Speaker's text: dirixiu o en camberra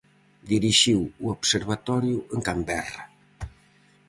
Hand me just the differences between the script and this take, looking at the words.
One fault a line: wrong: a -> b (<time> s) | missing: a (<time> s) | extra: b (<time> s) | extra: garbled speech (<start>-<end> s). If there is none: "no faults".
extra: observatorio (1.4 s)